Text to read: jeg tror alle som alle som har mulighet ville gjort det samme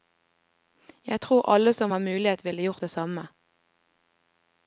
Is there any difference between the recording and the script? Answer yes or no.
yes